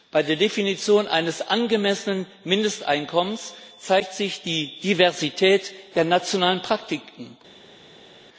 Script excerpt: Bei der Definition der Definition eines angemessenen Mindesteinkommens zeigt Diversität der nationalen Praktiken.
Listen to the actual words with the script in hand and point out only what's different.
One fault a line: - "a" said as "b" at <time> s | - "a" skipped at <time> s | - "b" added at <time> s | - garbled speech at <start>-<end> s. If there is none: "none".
- "der Definition" skipped at 1.1 s
- "sich die" added at 4.1 s